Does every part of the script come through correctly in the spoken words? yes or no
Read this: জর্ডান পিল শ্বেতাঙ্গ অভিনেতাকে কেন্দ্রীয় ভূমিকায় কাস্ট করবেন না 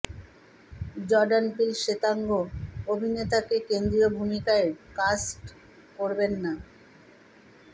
yes